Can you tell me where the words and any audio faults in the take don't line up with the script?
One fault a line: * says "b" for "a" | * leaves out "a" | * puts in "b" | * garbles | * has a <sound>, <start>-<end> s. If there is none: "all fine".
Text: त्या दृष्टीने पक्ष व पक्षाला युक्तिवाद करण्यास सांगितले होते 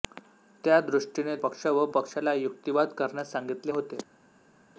all fine